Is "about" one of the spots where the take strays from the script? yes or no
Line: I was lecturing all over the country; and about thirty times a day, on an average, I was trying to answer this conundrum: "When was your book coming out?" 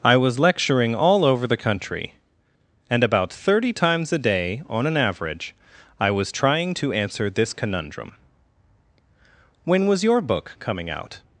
no